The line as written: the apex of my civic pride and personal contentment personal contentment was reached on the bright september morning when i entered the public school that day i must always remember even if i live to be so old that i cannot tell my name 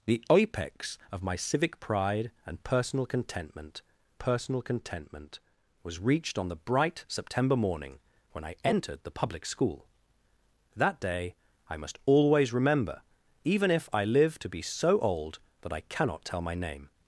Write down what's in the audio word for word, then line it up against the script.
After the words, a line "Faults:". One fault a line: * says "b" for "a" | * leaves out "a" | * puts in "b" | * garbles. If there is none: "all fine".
the apex of my civic pride and personal contentment personal contentment was reached on the bright september morning when i entered the public school that day i must always remember even if i live to be so old that i cannot tell my name
Faults:
all fine